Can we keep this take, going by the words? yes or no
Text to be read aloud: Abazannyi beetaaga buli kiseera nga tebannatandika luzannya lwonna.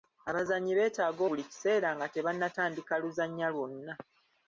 yes